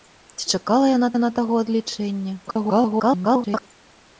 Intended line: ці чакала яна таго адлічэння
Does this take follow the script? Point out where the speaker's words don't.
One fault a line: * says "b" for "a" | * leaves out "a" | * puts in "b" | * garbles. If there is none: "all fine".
* puts in "яна"
* garbles